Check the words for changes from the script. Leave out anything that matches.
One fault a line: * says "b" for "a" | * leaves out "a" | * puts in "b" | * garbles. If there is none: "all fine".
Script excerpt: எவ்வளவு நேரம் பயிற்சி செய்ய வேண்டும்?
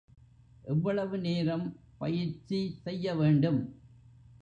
all fine